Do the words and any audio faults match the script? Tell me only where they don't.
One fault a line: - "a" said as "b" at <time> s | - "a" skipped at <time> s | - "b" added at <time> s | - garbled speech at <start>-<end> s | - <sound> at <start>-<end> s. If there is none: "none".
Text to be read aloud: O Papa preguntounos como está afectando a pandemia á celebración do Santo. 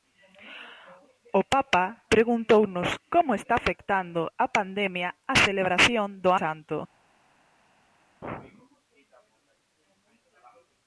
none